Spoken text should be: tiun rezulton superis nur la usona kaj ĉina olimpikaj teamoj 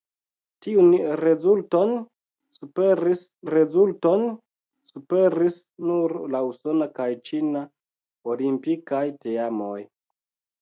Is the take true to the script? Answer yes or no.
no